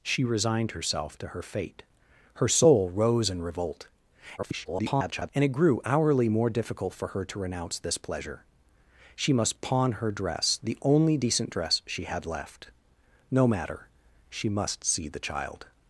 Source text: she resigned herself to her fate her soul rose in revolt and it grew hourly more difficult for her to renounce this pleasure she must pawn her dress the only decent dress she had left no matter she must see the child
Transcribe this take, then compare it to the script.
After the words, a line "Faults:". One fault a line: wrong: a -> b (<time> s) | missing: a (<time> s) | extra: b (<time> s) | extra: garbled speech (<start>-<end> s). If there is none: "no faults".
she resigned herself to her fate her soul rose in revolt [garbled] and it grew hourly more difficult for her to renounce this pleasure she must pawn her dress the only decent dress she had left no matter she must see the child
Faults:
extra: garbled speech (4.4-5.3 s)